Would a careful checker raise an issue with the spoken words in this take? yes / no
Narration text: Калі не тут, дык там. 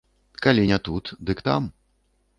no